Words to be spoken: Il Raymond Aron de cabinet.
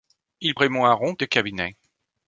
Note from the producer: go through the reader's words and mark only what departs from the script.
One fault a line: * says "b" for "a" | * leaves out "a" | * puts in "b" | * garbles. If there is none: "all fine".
all fine